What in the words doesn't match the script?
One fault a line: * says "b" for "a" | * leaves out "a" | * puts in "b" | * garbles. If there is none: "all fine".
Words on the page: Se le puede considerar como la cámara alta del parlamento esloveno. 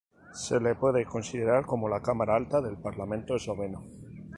all fine